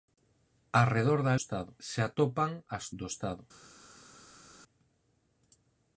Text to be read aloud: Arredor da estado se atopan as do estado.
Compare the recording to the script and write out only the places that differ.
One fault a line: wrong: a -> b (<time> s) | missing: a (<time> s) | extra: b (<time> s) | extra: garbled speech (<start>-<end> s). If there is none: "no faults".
no faults